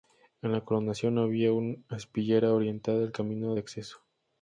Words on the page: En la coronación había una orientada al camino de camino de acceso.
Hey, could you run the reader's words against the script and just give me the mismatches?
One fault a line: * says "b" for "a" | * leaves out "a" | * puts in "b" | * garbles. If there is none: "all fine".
* puts in "aspillera"
* leaves out "camino de"